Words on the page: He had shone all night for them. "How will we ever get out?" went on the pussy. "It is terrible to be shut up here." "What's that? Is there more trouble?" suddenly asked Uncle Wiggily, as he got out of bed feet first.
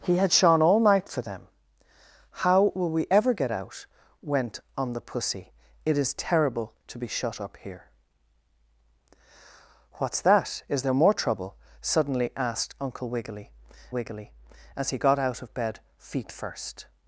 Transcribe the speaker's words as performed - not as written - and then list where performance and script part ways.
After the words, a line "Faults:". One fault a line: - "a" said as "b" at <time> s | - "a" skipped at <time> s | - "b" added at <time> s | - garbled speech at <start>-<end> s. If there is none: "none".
He had shone all night for them. "How will we ever get out?" went on the pussy. "It is terrible to be shut up here." "What's that? Is there more trouble?" suddenly asked Uncle Wiggily Wiggily, as he got out of bed feet first.
Faults:
- "Wiggily" added at 13.9 s